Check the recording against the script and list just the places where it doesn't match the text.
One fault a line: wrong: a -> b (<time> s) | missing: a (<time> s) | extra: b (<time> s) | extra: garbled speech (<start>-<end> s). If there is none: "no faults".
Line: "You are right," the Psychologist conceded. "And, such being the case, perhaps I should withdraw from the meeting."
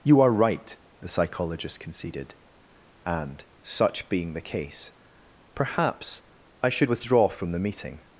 no faults